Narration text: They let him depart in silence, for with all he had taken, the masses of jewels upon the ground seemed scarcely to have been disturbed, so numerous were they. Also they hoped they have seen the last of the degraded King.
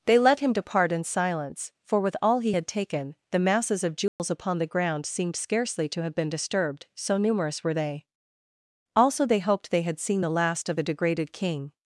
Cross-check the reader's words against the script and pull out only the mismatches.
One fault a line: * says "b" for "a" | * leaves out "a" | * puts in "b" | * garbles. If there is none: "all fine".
* says "had" for "have"